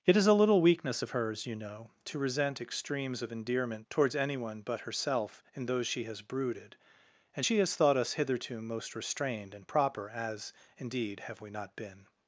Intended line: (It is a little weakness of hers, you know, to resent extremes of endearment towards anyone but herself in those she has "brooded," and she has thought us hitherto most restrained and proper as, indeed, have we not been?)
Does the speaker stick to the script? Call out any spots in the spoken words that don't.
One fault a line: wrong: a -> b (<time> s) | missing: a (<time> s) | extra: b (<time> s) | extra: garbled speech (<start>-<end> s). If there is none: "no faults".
no faults